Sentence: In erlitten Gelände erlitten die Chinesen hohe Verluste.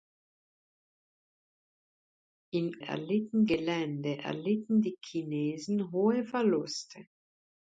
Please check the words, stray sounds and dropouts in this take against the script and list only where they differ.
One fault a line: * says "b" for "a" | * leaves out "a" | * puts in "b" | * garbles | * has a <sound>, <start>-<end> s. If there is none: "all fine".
all fine